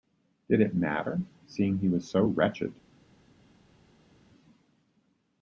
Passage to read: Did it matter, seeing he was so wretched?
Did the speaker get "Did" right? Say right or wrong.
right